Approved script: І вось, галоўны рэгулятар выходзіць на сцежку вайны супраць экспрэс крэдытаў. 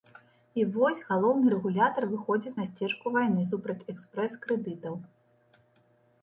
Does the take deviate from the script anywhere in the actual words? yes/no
no